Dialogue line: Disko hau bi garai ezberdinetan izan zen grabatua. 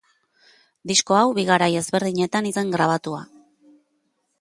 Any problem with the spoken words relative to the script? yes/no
yes